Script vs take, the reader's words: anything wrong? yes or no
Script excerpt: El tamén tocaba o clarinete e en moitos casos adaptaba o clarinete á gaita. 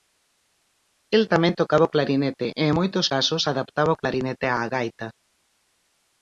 no